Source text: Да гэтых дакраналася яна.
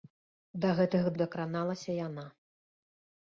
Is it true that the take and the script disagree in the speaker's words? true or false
false